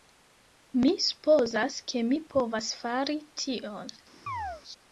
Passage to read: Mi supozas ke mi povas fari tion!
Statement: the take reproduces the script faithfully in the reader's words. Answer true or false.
true